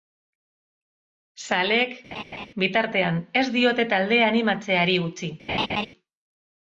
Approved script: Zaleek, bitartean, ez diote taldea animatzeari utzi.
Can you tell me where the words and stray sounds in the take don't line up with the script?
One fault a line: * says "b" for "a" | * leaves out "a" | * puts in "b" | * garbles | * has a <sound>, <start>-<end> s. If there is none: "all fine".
* has a laugh, 2.1-2.5 s
* has a laugh, 5.5-5.9 s